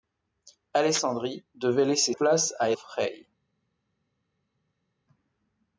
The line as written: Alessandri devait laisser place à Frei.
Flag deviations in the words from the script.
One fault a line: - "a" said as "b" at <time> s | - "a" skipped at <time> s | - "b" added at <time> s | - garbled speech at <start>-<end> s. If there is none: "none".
none